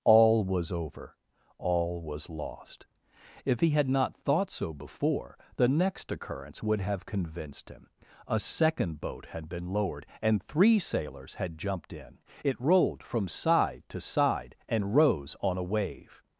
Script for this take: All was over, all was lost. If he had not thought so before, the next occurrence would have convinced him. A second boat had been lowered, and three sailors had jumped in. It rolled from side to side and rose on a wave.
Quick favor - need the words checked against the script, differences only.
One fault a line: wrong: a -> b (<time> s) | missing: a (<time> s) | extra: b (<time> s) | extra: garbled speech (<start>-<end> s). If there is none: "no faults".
no faults